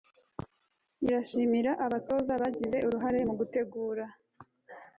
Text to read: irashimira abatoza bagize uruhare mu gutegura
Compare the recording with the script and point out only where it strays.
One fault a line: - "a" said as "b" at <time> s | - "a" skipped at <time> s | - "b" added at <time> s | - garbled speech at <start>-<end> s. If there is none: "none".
none